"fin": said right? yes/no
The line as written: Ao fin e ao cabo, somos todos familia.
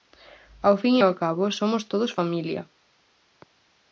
yes